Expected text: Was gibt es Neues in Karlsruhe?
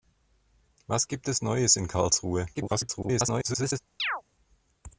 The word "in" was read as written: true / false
true